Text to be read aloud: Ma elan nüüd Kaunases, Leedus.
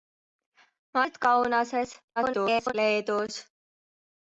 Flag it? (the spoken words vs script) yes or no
yes